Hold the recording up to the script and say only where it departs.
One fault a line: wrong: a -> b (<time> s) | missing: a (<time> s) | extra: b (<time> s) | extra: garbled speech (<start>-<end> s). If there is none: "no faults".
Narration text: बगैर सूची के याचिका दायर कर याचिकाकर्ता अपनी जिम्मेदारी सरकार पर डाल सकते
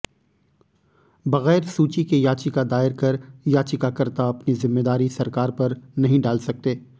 extra: नहीं (6.0 s)